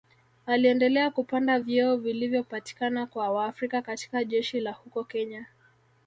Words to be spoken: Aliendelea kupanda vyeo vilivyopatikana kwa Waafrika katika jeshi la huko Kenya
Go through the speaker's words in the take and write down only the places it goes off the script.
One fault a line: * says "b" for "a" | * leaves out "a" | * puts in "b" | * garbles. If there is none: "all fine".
all fine